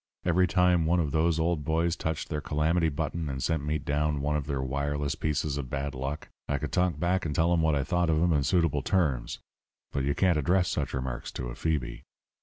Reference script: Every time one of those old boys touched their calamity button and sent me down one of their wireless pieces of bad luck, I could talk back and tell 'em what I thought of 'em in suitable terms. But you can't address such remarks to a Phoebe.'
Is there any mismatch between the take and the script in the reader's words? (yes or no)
no